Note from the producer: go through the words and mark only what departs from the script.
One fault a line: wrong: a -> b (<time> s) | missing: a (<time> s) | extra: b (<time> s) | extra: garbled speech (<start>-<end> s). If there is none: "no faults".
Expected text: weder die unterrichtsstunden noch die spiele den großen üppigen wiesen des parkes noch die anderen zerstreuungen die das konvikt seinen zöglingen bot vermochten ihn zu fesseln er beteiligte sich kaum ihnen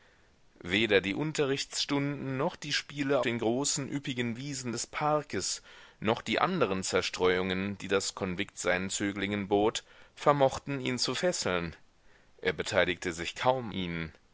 no faults